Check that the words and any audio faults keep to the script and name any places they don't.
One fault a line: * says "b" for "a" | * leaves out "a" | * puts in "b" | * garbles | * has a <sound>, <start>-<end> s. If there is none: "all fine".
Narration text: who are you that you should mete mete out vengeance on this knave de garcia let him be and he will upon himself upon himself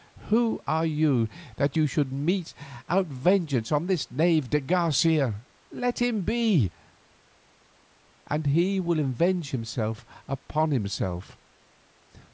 * leaves out "mete"
* says "avenge" for "upon"